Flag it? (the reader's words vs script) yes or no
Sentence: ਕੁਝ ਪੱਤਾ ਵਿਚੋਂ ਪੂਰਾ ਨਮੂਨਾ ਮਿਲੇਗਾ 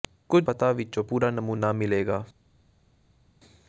no